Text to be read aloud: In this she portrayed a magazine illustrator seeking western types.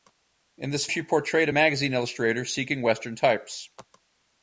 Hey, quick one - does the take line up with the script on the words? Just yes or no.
yes